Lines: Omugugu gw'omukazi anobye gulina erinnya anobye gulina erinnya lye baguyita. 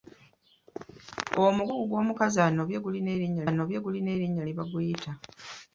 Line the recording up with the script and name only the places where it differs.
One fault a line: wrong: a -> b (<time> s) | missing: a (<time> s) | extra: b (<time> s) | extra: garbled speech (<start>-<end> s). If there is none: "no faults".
no faults